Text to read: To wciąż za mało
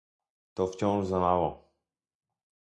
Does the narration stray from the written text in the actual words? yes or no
no